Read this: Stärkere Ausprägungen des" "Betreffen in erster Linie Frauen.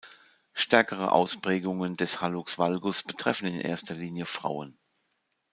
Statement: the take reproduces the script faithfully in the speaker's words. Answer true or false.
false